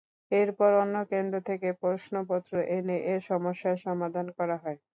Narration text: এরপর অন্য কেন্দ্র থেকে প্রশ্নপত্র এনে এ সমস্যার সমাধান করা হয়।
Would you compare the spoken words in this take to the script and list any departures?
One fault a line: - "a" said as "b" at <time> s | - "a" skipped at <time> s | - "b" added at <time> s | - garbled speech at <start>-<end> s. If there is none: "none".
none